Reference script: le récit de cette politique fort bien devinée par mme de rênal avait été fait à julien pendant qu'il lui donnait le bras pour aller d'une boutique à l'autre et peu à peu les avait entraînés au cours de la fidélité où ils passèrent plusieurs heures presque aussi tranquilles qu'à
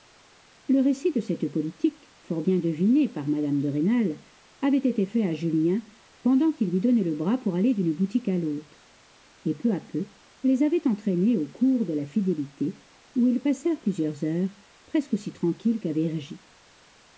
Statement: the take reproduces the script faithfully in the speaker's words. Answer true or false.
true